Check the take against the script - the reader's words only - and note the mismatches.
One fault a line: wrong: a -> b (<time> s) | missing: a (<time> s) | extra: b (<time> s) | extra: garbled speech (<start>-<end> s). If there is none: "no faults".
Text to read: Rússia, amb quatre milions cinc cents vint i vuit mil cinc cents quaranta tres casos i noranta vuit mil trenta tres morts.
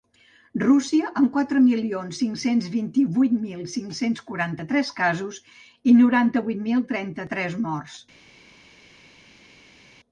no faults